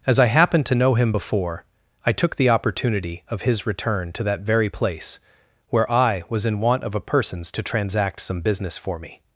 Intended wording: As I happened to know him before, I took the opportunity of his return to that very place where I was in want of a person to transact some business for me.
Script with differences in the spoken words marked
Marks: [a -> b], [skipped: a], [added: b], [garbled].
As I happened to know him before, I took the opportunity of his return to that very place where I was in want of a [person -> persons] to transact some business for me.